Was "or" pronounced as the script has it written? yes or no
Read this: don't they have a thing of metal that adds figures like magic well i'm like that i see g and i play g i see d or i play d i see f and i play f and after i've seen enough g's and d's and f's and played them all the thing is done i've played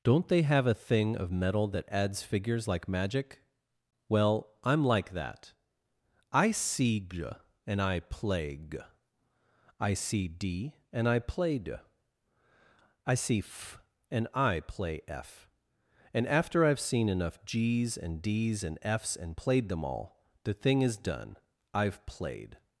no